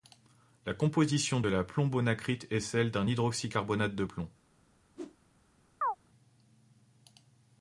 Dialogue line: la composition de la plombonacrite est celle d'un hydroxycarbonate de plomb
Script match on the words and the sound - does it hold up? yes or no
no